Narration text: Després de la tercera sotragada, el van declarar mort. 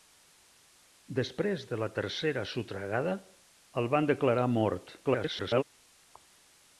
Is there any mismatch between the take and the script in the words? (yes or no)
yes